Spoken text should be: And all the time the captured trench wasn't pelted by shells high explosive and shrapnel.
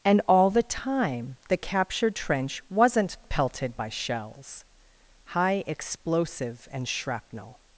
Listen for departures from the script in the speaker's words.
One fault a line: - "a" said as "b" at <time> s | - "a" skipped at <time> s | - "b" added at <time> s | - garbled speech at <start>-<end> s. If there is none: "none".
none